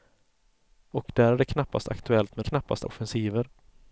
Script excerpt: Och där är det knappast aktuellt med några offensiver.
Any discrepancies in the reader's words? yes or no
yes